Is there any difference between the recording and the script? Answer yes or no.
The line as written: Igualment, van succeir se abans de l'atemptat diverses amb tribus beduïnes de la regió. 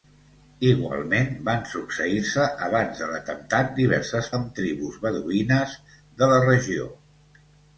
no